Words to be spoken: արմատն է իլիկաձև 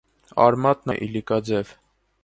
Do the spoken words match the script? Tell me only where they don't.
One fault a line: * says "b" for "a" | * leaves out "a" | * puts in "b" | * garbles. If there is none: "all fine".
all fine